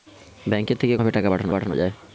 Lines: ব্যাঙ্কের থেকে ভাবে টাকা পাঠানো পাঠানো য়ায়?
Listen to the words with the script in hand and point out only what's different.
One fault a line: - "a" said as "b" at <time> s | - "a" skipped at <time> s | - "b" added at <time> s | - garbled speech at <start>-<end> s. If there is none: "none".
none